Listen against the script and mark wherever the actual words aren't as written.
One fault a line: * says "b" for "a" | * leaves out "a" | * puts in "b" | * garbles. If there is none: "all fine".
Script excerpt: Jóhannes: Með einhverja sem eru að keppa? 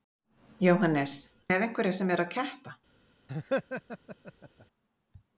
all fine